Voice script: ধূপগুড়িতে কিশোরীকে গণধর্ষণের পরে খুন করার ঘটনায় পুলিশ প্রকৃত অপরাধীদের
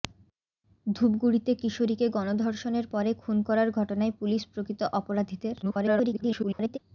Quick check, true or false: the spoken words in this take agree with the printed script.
false